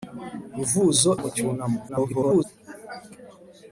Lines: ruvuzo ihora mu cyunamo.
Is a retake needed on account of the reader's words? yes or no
yes